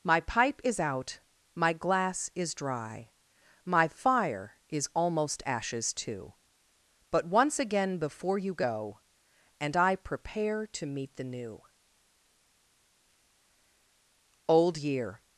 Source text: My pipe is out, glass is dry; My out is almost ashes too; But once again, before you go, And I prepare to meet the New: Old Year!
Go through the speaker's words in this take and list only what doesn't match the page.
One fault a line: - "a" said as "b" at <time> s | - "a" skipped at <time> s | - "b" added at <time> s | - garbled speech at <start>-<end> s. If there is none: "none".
- "my" added at 1.5 s
- "out" said as "fire" at 3.9 s